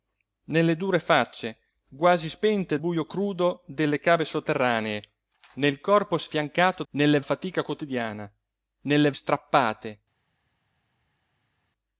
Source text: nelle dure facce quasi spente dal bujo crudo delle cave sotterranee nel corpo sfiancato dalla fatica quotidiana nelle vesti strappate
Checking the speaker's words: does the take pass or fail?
fail